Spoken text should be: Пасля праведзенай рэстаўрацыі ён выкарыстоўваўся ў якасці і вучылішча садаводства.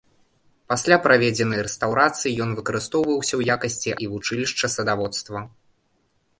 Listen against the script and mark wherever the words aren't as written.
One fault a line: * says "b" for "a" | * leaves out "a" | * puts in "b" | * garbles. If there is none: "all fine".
all fine